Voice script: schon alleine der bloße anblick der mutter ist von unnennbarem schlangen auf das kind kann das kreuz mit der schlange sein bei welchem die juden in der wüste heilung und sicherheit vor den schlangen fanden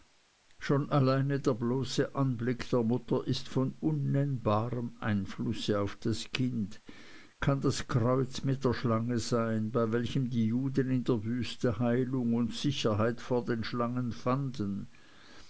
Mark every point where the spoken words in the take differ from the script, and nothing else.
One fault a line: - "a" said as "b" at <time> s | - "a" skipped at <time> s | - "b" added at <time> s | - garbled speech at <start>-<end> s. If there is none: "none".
- "schlangen" said as "einflusse" at 5.0 s